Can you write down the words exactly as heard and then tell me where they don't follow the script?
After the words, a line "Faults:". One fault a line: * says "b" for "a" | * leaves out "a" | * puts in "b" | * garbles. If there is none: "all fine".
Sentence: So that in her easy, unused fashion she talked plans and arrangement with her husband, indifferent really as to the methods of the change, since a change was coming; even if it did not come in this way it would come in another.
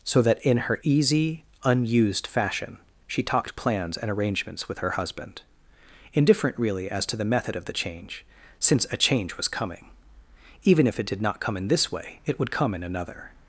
So that in her easy, unused fashion she talked plans and arrangements with her husband, indifferent really as to the method of the change, since a change was coming; even if it did not come in this way it would come in another.
Faults:
* says "arrangements" for "arrangement"
* says "method" for "methods"